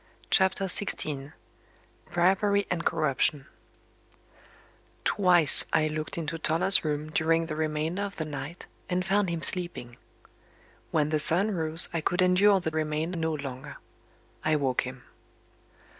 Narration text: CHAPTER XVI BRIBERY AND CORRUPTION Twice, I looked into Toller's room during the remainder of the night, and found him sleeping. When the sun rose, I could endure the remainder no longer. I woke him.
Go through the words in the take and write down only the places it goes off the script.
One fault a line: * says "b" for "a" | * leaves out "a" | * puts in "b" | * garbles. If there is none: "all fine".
all fine